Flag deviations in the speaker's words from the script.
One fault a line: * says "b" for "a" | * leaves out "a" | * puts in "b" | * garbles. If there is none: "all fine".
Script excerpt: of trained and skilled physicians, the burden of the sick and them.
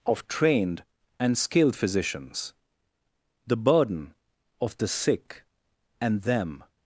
all fine